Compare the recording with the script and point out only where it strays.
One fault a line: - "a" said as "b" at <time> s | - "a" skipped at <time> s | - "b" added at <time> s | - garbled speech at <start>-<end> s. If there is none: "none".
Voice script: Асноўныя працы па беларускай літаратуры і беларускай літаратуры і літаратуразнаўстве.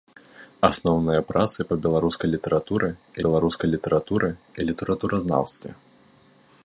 none